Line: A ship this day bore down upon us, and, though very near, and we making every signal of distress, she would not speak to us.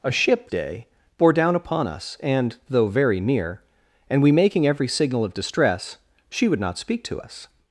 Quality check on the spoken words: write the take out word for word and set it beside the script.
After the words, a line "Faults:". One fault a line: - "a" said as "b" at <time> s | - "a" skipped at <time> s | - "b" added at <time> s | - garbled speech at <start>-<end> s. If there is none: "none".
A ship day bore down upon us, and, though very near, and we making every signal of distress, she would not speak to us.
Faults:
- "this" skipped at 0.5 s